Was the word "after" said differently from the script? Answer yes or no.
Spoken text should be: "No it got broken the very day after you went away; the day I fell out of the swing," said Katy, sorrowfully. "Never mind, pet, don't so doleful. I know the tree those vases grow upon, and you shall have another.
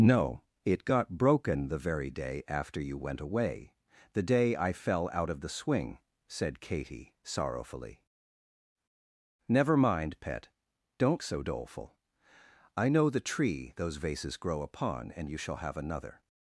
no